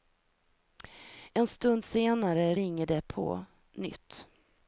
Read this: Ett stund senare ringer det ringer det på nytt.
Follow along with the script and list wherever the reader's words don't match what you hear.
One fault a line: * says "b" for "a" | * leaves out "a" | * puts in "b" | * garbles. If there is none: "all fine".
* says "En" for "Ett"
* leaves out "ringer det"